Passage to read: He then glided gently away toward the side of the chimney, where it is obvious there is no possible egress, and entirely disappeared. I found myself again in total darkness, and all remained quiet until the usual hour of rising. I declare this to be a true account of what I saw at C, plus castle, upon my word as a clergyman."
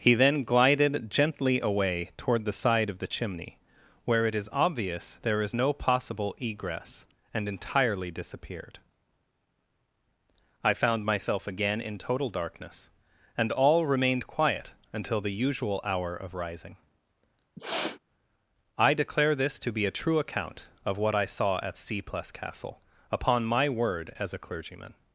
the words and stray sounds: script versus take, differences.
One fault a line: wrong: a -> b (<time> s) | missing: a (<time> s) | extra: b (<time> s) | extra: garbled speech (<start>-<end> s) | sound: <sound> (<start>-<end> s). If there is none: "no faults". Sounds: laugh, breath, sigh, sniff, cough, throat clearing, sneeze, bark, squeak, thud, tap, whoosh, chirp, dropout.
sound: sniff (17.6-18.0 s)